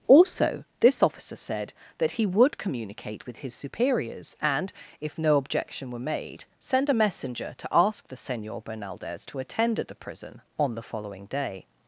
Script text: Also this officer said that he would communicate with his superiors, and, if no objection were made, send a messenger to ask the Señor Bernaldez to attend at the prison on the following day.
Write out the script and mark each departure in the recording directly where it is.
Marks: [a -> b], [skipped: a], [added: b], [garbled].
Also this officer said that he would communicate with his superiors, and, if no objection were made, send a messenger to ask the Señor Bernaldez to attend at the prison on the following day.